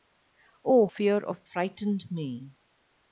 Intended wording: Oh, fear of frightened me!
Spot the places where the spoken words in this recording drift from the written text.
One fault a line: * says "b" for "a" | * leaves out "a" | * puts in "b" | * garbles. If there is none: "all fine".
all fine